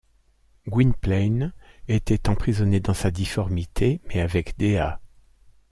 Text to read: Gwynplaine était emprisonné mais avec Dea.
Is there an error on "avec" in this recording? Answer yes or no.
no